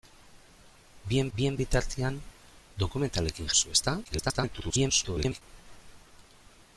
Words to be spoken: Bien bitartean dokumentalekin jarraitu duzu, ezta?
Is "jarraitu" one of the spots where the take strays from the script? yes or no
yes